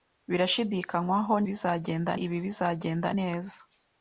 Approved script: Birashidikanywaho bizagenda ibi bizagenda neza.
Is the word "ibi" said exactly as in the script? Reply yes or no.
yes